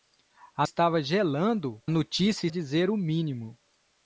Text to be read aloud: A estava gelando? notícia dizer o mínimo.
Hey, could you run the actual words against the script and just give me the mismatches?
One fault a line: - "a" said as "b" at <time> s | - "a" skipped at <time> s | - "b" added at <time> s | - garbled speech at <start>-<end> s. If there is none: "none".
none